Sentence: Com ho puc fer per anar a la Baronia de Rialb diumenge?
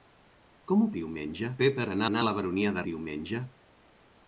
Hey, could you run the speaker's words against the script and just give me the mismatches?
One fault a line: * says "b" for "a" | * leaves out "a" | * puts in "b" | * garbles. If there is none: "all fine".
* says "diumenge" for "puc"
* puts in "anar"
* leaves out "Rialb"